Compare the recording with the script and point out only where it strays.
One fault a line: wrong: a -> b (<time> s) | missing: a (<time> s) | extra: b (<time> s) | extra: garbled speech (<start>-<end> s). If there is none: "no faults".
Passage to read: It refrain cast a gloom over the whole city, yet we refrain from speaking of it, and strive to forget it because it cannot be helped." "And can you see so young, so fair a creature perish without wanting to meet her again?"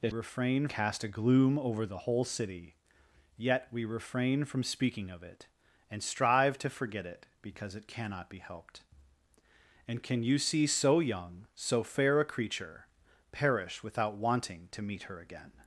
no faults